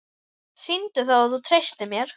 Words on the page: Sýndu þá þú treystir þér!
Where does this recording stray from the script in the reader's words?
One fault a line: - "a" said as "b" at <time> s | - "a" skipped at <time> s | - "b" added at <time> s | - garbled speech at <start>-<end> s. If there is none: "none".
- "að" added at 1.2 s
- "þér" said as "mér" at 1.9 s